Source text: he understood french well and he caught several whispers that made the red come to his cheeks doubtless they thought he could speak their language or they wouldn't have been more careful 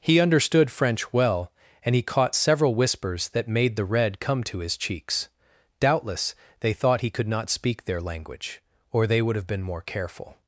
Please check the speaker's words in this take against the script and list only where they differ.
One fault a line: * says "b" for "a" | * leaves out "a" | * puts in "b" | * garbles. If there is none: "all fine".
* puts in "not"
* says "would" for "wouldn't"